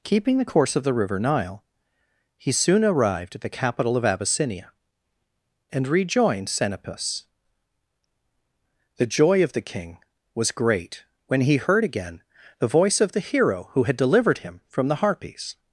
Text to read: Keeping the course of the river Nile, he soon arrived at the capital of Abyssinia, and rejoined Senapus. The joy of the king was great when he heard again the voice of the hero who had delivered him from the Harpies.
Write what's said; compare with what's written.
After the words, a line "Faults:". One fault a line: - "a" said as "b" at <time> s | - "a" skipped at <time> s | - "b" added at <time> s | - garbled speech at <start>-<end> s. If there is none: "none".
Keeping the course of the river Nile, he soon arrived at the capital of Abyssinia, and rejoined Senapus. The joy of the king was great when he heard again the voice of the hero who had delivered him from the Harpies.
Faults:
none